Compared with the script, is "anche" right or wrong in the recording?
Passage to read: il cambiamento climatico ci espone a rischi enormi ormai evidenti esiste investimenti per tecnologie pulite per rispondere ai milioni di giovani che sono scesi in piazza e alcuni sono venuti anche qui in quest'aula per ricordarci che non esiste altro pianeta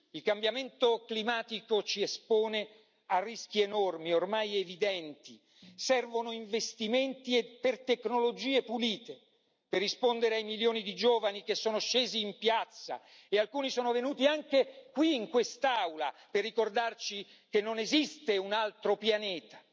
right